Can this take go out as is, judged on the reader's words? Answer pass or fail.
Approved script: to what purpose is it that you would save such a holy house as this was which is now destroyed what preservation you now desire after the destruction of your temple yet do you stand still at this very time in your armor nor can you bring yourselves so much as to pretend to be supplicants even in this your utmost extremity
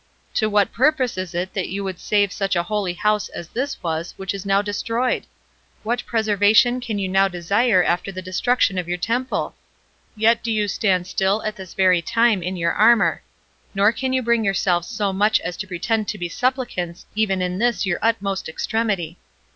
fail